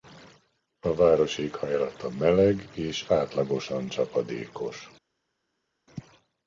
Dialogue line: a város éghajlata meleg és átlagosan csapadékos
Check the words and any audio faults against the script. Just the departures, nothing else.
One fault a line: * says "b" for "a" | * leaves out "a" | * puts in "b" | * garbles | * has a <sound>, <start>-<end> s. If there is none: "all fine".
all fine